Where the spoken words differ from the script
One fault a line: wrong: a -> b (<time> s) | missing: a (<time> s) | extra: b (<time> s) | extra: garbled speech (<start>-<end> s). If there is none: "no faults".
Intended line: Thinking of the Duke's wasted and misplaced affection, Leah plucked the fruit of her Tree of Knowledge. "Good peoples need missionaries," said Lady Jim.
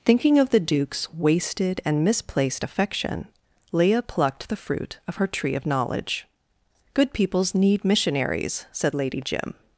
no faults